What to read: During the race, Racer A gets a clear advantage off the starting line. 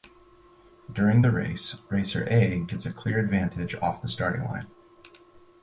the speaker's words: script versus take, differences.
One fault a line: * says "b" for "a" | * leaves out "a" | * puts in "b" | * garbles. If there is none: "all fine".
all fine